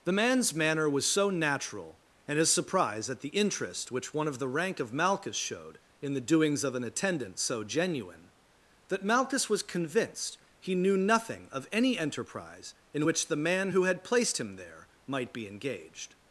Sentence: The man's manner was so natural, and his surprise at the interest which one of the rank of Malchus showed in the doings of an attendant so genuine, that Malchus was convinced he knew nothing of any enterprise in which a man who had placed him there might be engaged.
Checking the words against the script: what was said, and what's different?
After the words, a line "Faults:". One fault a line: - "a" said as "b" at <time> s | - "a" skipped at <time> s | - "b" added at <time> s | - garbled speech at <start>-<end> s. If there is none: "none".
The man's manner was so natural, and his surprise at the interest which one of the rank of Malchus showed in the doings of an attendant so genuine, that Malchus was convinced he knew nothing of any enterprise in which the man who had placed him there might be engaged.
Faults:
- "a" said as "the" at 13.3 s